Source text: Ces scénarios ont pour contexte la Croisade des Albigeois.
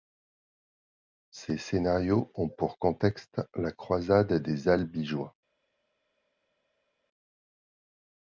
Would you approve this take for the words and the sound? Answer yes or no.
yes